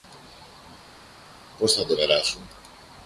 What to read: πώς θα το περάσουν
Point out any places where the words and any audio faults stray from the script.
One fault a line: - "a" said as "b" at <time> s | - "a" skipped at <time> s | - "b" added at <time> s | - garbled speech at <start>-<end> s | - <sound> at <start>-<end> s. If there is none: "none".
none